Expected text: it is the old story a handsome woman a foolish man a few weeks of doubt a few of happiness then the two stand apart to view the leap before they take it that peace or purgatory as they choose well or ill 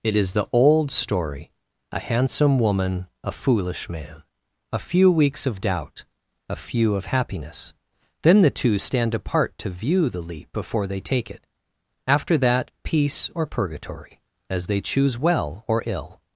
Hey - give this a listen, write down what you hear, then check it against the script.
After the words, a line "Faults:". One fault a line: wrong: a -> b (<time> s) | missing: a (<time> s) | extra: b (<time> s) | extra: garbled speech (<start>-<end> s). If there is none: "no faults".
it is the old story a handsome woman a foolish man a few weeks of doubt a few of happiness then the two stand apart to view the leap before they take it after that peace or purgatory as they choose well or ill
Faults:
extra: after (12.1 s)